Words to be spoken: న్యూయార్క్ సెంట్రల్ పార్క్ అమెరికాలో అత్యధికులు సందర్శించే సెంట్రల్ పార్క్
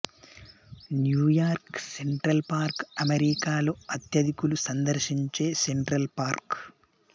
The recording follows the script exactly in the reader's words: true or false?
true